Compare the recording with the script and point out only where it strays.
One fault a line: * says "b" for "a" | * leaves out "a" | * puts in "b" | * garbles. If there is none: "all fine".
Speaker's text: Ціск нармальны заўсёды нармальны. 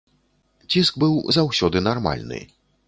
* says "быў" for "нармальны"